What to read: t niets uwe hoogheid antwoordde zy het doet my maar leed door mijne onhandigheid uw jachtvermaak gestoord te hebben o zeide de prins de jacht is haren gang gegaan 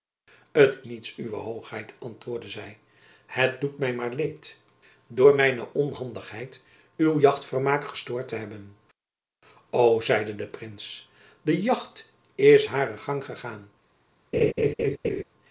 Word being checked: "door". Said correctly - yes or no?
yes